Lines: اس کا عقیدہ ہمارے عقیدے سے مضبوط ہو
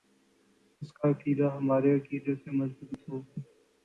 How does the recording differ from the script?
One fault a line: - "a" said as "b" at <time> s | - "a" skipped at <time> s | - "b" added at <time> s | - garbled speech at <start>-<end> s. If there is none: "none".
none